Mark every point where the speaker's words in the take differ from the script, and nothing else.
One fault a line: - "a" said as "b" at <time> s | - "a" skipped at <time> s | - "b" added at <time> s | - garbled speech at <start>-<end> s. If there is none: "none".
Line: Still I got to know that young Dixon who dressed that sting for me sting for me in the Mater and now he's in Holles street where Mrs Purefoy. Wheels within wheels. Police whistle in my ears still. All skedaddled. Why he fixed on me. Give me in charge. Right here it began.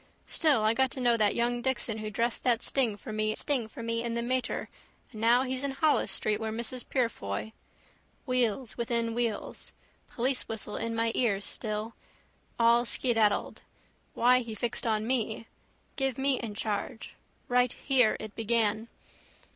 none